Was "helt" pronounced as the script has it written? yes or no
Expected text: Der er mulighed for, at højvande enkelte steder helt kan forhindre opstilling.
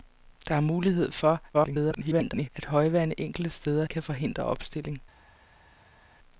no